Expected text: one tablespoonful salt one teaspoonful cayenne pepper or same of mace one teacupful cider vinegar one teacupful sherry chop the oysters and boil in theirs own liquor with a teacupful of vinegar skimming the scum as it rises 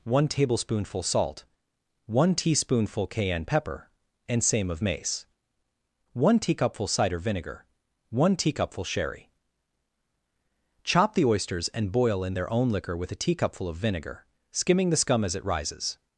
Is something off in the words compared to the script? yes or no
yes